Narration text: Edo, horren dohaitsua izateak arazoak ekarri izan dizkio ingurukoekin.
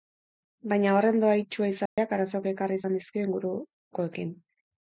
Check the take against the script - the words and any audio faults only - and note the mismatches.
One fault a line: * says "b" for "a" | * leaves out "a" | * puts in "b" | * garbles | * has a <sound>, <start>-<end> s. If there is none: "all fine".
* says "Baina" for "Edo"
* has a dropout, 1.9-2.0 s